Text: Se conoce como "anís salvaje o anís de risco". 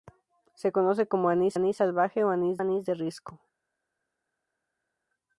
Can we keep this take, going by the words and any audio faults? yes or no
no